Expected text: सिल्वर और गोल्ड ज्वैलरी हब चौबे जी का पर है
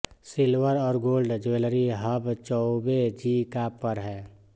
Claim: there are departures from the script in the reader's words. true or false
false